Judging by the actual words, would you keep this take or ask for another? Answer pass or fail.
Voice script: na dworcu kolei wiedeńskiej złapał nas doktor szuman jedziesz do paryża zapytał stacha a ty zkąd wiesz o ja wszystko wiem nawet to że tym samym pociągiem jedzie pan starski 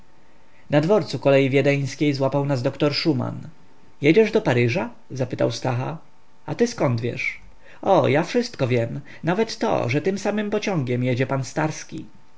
pass